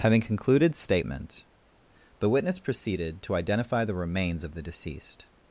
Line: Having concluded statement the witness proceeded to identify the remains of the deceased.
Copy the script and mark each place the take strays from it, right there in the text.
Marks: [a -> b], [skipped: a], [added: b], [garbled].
Having concluded statement the witness proceeded to identify the remains of the deceased.